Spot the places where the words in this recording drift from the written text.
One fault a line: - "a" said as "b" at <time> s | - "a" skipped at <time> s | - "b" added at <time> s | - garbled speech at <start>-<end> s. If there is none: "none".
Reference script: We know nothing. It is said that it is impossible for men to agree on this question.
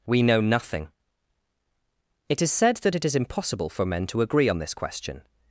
none